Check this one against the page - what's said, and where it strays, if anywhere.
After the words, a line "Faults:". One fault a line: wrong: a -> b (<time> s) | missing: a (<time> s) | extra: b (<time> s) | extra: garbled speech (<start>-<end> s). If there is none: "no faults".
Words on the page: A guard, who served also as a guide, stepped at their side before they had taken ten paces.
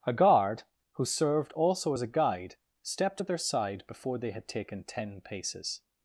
A guard, who served also as a guide, stepped at their side before they had taken ten paces.
Faults:
no faults